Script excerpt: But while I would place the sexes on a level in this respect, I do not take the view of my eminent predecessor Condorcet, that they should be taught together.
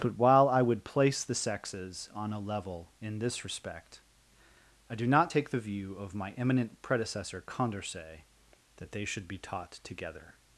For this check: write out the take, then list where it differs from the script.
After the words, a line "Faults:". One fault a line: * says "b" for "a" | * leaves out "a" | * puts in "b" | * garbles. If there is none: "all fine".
But while I would place the sexes on a level in this respect, I do not take the view of my eminent predecessor Condorcet, that they should be taught together.
Faults:
all fine